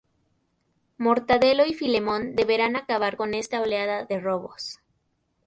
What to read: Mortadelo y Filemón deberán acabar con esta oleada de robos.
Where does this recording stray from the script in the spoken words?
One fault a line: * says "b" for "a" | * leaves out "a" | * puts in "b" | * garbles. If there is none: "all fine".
all fine